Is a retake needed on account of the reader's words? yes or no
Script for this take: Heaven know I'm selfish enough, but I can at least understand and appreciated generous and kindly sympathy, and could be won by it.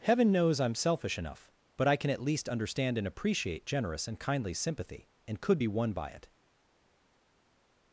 yes